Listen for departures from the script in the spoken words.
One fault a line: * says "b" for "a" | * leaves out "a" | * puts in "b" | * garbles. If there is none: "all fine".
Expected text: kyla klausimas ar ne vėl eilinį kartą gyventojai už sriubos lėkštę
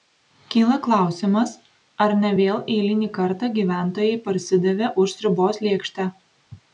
* puts in "parsidavė"